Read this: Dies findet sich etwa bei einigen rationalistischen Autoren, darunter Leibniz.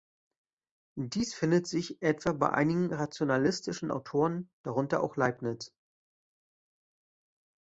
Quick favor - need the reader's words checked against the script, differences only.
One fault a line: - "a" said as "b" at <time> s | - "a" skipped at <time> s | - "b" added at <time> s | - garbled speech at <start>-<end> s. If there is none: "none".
- "auch" added at 5.0 s